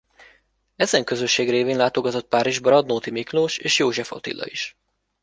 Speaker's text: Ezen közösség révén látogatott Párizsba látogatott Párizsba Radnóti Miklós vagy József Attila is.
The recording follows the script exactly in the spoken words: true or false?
false